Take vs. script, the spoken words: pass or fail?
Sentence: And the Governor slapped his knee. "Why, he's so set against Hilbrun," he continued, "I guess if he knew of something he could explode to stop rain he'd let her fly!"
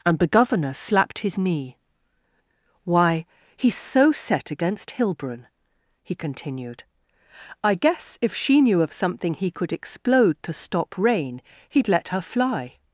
fail